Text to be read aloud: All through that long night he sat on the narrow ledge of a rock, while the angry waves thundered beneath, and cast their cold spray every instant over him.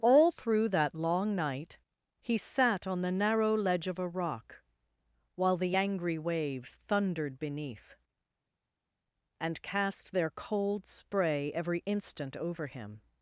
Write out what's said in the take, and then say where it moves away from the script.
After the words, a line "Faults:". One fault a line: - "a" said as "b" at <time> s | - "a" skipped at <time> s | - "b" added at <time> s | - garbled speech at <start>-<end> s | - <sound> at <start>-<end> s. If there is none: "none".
All through that long night he sat on the narrow ledge of a rock, while the angry waves thundered beneath, and cast their cold spray every instant over him.
Faults:
none